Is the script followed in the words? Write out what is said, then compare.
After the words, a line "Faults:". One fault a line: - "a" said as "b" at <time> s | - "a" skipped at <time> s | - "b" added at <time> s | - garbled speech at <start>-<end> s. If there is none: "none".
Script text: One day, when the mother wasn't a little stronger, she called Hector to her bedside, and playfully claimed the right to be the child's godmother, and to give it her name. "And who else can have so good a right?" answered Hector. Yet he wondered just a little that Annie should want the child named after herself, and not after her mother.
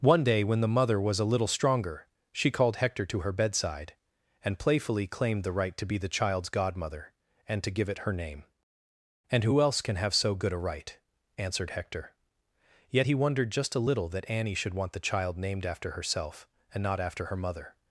One day, when the mother was a little stronger, she called Hector to her bedside, and playfully claimed the right to be the child's godmother, and to give it her name. "And who else can have so good a right?" answered Hector. Yet he wondered just a little that Annie should want the child named after herself, and not after her mother.
Faults:
- "wasn't" said as "was" at 1.0 s